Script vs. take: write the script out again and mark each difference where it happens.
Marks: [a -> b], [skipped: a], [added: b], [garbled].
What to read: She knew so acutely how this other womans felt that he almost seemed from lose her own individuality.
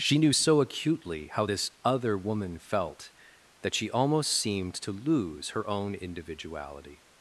She knew so acutely how this other [womans -> woman] felt that [he -> she] almost seemed [from -> to] lose her own individuality.